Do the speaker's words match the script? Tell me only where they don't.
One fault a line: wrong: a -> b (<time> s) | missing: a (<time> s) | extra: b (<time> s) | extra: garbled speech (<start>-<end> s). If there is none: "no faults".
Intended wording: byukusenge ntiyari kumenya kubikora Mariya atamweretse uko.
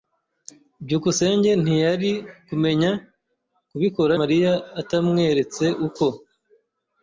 no faults